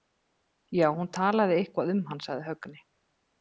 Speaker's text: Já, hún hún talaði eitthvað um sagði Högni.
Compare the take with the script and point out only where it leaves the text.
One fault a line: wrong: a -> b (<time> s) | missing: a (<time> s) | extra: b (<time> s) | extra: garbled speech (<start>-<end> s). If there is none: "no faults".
missing: hún (1.1 s)
extra: hann (2.1 s)